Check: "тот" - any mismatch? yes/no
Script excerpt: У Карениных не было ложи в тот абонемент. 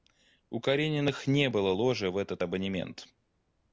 yes